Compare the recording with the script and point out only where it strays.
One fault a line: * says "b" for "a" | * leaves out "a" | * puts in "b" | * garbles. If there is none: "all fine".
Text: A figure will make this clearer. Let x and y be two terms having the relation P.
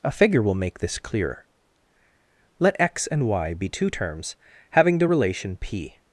all fine